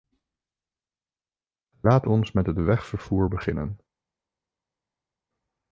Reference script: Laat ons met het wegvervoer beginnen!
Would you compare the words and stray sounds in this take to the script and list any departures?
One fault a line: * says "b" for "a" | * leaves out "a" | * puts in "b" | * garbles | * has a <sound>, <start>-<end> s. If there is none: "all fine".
all fine